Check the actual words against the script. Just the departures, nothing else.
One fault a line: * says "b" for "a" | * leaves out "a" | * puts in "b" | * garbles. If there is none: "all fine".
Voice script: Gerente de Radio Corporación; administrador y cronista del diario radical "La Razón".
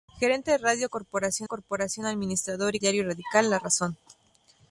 * puts in "Corporación"
* leaves out "cronista del"